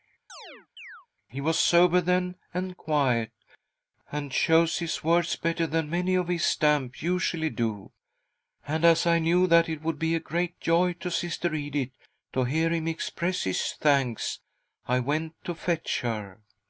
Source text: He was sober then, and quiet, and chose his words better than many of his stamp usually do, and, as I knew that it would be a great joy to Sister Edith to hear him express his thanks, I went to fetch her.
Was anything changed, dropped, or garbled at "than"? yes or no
no